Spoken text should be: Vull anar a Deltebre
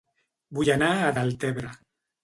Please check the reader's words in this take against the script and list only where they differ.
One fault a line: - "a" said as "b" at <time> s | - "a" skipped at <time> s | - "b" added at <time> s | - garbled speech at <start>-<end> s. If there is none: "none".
none